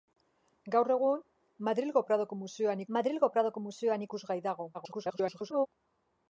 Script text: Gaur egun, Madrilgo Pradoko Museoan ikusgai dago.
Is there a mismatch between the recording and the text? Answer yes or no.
yes